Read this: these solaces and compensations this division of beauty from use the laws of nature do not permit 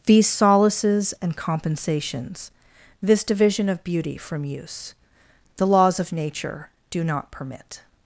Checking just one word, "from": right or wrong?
right